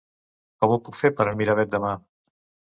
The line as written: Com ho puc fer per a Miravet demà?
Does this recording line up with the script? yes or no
yes